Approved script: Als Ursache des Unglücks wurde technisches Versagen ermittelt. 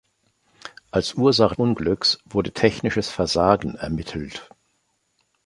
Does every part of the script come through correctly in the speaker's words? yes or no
no